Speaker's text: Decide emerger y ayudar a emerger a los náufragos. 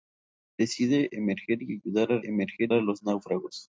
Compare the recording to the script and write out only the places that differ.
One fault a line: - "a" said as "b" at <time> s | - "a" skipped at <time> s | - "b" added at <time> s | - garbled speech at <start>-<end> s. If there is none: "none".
none